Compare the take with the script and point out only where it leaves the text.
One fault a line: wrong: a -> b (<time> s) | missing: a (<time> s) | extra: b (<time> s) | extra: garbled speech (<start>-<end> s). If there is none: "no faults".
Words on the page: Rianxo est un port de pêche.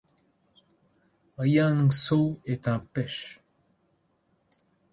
missing: port de (2.8 s)